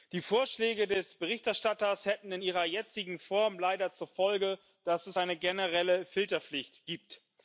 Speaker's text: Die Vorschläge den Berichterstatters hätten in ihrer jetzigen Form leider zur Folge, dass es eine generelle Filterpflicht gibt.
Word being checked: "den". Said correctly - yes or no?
no